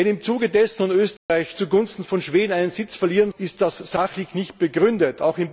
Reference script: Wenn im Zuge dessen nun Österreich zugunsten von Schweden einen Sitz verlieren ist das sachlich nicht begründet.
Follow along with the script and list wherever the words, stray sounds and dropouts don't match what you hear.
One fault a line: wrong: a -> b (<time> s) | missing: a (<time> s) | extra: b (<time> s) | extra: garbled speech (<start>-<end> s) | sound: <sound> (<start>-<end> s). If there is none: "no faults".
sound: dropout (1.2-1.3 s)